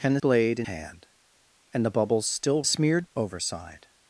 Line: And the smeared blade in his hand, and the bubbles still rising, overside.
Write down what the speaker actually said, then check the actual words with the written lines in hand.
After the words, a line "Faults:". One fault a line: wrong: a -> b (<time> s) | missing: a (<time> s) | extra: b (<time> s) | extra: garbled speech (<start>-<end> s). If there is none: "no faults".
And the blade in hand, and the bubbles still smeared, overside.
Faults:
missing: smeared (0.2 s)
missing: his (0.7 s)
wrong: rising -> smeared (2.6 s)